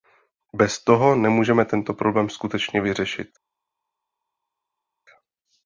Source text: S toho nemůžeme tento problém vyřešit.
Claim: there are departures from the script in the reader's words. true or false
true